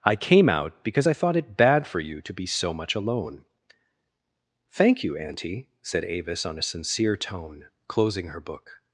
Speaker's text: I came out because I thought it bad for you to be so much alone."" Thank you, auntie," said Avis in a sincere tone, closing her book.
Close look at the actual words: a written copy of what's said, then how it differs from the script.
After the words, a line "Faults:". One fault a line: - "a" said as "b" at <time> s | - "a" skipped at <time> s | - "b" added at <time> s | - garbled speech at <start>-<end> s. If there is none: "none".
I came out because I thought it bad for you to be so much alone."" Thank you, auntie," said Avis on a sincere tone, closing her book.
Faults:
- "in" said as "on" at 6.5 s